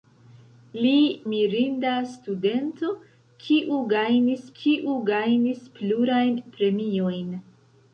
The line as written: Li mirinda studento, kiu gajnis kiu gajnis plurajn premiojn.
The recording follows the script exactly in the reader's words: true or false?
true